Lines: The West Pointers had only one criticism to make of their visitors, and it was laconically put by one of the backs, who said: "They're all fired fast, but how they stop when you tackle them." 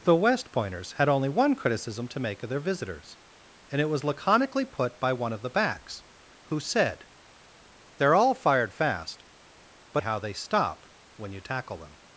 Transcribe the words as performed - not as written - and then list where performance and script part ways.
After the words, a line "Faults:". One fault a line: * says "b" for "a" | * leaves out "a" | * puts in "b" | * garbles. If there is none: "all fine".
The West Pointers had only one criticism to make of their visitors, and it was laconically put by one of the backs, who said: "They're all fired fast, but how they stop when you tackle them."
Faults:
all fine